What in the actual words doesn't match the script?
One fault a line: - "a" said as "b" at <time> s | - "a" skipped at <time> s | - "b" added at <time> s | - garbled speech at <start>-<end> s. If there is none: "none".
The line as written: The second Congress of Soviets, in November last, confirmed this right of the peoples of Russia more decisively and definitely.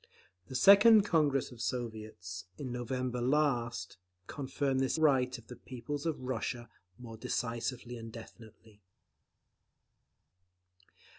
none